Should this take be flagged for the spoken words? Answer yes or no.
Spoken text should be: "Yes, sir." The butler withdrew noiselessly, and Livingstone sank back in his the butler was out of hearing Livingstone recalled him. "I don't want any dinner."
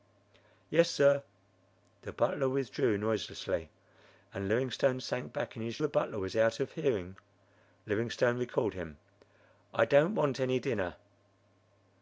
no